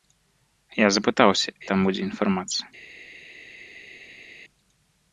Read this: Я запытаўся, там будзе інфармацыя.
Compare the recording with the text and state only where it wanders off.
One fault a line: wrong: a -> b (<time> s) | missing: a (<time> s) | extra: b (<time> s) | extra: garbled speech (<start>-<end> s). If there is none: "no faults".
no faults